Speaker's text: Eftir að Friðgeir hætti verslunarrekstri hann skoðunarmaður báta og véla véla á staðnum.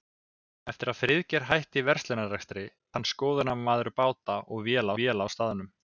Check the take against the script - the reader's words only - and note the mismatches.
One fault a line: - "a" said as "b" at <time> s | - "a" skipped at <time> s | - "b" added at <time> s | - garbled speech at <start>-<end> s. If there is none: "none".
none